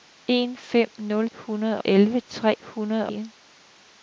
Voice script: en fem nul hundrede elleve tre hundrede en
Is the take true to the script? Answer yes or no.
yes